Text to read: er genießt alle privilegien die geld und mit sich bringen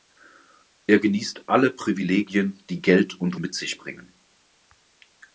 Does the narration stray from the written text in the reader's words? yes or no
no